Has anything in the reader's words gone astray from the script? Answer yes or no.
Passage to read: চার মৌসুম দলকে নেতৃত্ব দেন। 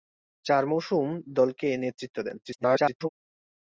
yes